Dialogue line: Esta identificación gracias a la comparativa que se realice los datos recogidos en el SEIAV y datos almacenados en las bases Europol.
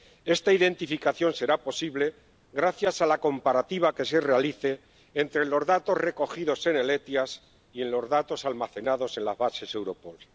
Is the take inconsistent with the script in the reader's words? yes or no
yes